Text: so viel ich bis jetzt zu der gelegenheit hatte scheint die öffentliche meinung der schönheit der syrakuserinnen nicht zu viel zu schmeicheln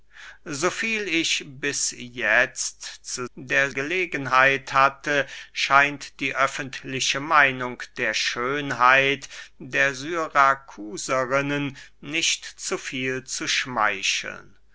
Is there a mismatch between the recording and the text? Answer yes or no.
no